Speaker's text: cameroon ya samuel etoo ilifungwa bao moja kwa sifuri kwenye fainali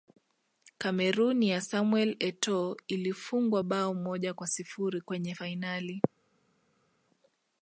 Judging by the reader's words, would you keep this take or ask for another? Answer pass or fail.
pass